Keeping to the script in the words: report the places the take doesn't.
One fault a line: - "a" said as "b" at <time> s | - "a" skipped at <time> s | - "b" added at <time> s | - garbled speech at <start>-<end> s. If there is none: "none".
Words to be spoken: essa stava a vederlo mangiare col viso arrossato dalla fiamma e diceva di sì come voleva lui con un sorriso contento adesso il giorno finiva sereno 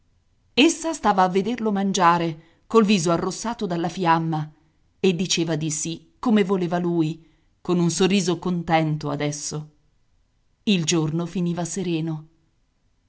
none